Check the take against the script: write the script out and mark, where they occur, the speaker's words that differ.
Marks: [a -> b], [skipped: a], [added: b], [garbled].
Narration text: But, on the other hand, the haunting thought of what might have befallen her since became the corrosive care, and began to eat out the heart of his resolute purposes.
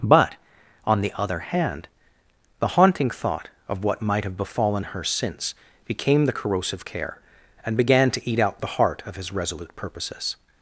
But, on the other hand, the haunting thought of what might have befallen her since became the corrosive care, and began to eat out the heart of his resolute purposes.